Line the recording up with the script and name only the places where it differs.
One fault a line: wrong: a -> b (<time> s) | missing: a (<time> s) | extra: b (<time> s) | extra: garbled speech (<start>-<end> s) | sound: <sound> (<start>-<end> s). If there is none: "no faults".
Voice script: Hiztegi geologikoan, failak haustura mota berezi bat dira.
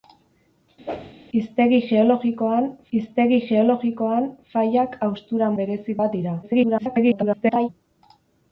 sound: whoosh (0.9-1.1 s)
extra: hiztegi geologikoan (3.0 s)
missing: mota (5.5 s)
extra: garbled speech (6.4-7.7 s)